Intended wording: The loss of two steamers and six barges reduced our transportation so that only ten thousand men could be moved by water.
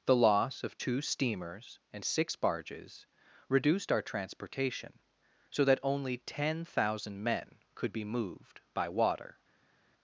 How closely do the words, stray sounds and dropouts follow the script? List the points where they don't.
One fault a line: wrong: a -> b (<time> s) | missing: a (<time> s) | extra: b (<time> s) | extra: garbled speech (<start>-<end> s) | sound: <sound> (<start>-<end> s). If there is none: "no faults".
no faults